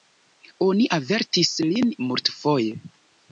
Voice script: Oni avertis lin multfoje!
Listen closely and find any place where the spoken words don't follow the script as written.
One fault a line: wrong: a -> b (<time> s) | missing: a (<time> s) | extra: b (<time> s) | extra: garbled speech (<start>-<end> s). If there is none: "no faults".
no faults